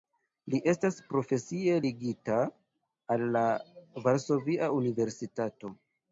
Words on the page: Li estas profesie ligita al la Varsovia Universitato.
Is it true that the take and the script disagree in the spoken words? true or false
false